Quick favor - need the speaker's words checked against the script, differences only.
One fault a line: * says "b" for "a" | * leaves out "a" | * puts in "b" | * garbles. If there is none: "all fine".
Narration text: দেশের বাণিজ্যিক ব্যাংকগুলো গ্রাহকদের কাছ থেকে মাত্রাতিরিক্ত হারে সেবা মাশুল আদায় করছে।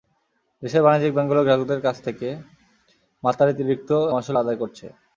* leaves out "হারে সেবা"